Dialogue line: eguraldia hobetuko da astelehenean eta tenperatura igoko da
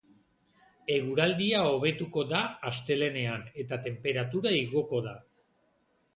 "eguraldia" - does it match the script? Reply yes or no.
yes